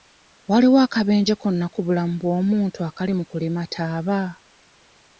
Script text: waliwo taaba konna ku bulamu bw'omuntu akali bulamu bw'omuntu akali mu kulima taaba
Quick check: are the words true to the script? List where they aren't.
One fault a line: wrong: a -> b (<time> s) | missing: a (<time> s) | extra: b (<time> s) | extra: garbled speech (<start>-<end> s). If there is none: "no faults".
wrong: taaba -> akabenje (0.8 s)
missing: bulamu bw'omuntu akali (3.1 s)